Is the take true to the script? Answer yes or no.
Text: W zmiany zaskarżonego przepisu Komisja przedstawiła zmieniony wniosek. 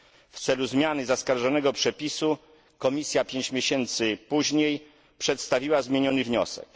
no